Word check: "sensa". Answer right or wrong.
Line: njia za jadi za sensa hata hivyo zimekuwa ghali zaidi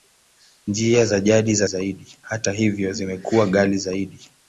wrong